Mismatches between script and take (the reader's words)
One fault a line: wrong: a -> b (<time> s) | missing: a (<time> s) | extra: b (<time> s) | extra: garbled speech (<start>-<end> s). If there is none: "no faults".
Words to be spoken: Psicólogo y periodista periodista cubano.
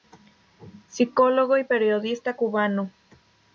missing: periodista (2.4 s)